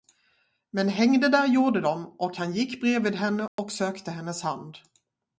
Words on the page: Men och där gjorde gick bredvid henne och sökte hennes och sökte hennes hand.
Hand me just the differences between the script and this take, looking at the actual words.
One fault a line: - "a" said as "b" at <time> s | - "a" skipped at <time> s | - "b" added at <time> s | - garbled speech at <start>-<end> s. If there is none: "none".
- "och" said as "hängde" at 0.9 s
- "de och han" added at 1.8 s
- "och sökte hennes" skipped at 4.4 s